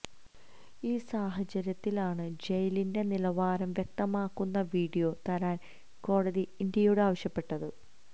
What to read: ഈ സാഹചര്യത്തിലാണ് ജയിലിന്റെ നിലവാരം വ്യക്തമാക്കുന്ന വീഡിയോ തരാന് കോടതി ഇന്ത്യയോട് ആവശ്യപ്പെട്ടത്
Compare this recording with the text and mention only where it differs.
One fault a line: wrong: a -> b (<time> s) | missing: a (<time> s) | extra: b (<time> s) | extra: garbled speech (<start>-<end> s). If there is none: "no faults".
no faults